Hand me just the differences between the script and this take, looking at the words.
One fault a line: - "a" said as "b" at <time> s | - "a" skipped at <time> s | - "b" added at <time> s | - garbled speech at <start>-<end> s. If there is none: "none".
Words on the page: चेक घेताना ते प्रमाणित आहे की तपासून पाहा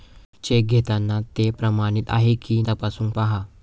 none